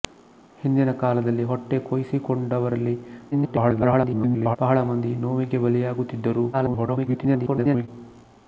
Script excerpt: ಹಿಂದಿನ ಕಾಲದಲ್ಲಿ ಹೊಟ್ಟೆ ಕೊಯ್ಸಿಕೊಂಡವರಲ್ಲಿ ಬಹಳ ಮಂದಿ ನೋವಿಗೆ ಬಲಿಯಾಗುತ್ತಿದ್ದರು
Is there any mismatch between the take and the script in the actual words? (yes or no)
yes